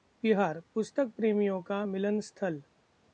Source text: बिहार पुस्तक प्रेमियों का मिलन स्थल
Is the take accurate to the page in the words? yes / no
yes